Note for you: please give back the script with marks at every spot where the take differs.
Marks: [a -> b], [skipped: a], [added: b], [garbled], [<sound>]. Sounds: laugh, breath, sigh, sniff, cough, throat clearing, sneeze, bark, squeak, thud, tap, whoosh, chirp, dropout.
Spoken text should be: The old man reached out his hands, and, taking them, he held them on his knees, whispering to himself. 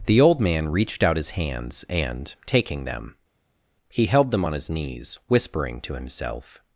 The old man reached out his hands, and, taking them, he held them on his knees, whispering to himself.